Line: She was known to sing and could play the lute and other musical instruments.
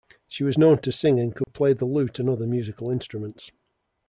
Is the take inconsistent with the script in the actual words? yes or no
no